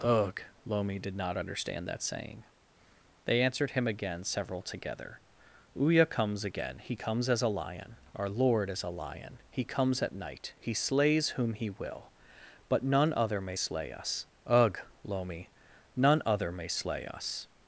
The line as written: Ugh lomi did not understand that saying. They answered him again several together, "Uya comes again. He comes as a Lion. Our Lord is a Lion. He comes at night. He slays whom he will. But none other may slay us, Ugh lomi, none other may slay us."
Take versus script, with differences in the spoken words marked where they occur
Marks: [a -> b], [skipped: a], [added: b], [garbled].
Ugh lomi did not understand that saying. They answered him again several together, "Uya comes again. He comes as a Lion. Our Lord is a Lion. He comes at night. He slays whom he will. But none other may slay us, Ugh lomi, none other may slay us."